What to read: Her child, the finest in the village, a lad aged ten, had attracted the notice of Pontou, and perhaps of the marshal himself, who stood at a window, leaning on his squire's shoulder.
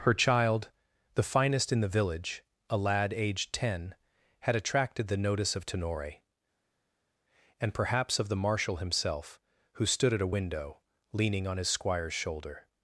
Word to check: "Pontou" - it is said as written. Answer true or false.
false